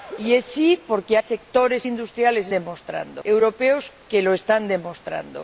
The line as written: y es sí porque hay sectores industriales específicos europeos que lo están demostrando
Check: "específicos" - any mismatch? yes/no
yes